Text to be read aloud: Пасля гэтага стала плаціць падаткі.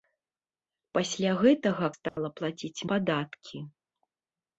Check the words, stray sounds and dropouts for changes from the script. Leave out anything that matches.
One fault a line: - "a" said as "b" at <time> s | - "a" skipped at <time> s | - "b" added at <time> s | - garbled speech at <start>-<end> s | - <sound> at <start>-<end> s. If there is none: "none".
- dropout at 2.1-2.2 s